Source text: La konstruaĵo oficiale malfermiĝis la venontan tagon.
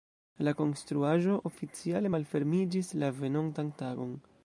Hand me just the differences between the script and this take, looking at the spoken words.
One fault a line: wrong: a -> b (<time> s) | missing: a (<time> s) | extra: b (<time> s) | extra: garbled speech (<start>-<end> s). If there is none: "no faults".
no faults